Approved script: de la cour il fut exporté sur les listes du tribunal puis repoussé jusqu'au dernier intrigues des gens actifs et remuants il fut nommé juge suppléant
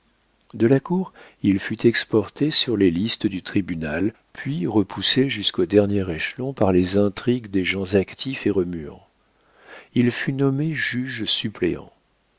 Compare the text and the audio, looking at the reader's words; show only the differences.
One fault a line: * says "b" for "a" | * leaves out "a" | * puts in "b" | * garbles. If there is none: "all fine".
* puts in "échelon par les"